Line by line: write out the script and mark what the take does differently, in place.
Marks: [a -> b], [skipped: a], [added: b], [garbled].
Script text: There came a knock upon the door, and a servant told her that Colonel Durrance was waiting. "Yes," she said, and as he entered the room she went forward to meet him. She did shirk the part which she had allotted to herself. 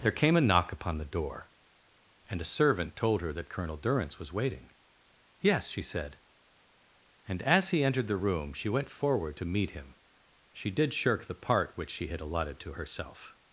There came a knock upon the door, and a servant told her that Colonel Durrance was waiting. "Yes," she said, and as he entered the room she went forward to meet him. She did shirk the part which she had allotted to herself.